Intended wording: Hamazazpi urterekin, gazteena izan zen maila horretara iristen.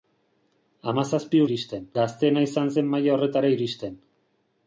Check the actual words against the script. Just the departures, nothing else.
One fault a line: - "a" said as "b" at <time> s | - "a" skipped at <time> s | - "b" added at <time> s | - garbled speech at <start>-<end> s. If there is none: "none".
- "urterekin" said as "iristen" at 1.5 s